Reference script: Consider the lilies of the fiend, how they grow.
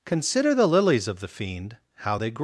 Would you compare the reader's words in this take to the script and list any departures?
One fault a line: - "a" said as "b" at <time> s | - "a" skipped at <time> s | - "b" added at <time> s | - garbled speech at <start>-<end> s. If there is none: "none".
none